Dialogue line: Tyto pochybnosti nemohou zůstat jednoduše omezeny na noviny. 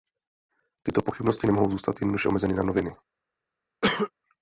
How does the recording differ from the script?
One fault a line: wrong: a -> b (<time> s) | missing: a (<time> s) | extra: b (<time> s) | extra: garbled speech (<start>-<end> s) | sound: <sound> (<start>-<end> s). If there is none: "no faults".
sound: cough (3.8-4.1 s)